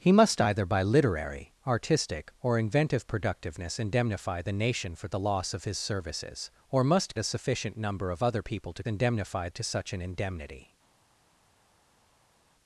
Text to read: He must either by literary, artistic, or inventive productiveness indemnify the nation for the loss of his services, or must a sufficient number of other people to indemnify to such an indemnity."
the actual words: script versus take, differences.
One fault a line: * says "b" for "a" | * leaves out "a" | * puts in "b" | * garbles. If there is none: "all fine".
all fine